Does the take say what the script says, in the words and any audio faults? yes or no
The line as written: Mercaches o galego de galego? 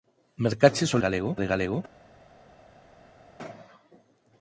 yes